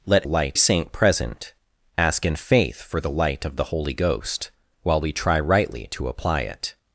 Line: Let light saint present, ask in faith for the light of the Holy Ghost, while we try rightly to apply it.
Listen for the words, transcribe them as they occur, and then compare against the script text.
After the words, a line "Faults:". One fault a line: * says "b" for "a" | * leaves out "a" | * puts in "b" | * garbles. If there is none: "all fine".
Let light saint present, ask in faith for the light of the Holy Ghost, while we try rightly to apply it.
Faults:
all fine